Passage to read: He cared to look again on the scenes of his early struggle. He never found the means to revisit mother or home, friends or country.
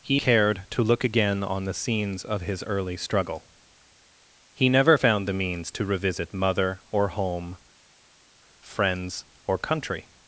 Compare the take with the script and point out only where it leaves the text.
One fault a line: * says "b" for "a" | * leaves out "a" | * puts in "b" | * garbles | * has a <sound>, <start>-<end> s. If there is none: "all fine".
all fine